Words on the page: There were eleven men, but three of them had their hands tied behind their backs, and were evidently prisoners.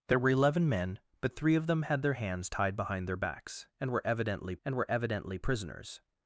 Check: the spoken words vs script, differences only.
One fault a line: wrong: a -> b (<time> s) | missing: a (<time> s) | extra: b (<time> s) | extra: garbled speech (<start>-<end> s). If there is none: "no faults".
extra: and were evidently (4.6 s)